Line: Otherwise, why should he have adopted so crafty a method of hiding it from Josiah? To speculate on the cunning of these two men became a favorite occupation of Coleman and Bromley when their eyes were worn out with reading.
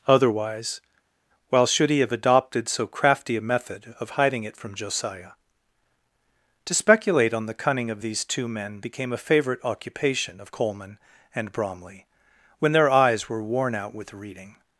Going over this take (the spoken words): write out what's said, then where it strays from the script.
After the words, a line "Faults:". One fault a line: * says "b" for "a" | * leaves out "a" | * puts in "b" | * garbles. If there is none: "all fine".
Otherwise, while should he have adopted so crafty a method of hiding it from Josiah? To speculate on the cunning of these two men became a favorite occupation of Coleman and Bromley when their eyes were worn out with reading.
Faults:
* says "while" for "why"